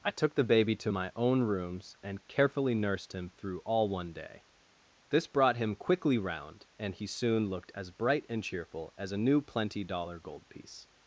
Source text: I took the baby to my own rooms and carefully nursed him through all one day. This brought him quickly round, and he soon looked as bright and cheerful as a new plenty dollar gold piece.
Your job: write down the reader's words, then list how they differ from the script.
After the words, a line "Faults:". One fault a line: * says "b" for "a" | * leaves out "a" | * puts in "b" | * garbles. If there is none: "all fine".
I took the baby to my own rooms and carefully nursed him through all one day. This brought him quickly round, and he soon looked as bright and cheerful as a new plenty dollar gold piece.
Faults:
all fine